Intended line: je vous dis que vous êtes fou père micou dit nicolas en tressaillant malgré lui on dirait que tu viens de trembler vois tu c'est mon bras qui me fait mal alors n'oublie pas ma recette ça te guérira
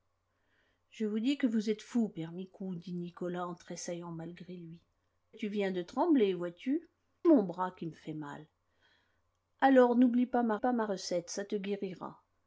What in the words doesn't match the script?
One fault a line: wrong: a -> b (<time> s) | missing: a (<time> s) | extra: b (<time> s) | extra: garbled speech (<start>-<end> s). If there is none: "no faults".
missing: on dirait que (4.8 s)
missing: c'est (6.9 s)
extra: pas ma (10.6 s)